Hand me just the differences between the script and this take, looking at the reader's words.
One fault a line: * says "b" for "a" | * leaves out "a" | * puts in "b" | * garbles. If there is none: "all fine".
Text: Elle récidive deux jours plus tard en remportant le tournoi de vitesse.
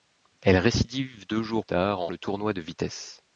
* leaves out "plus"
* leaves out "remportant"